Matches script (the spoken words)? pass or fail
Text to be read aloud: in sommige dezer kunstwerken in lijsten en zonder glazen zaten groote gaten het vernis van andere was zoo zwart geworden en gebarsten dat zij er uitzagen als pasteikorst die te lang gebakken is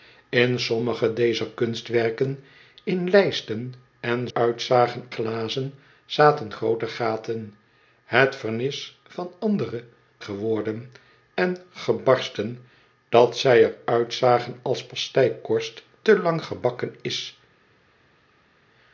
fail